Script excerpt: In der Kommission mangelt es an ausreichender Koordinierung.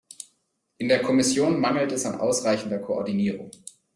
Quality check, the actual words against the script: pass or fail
pass